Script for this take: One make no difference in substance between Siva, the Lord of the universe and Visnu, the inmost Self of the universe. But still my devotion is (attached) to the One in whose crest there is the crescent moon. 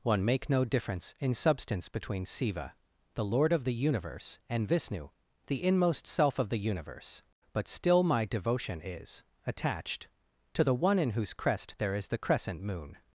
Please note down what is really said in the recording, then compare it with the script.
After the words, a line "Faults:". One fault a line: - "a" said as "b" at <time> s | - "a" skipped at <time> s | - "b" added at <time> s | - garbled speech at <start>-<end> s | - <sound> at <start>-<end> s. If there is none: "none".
One make no difference in substance between Siva, the Lord of the universe and Visnu, the inmost Self of the universe. But still my devotion is (attached) to the One in whose crest there is the crescent moon.
Faults:
none